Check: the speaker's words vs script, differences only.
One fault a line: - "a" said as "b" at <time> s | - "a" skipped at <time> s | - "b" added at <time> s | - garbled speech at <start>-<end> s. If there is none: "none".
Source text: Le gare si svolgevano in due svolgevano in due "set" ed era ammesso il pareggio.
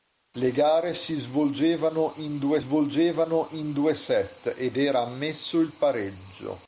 none